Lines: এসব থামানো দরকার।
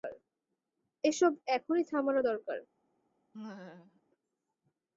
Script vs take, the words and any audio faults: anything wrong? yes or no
yes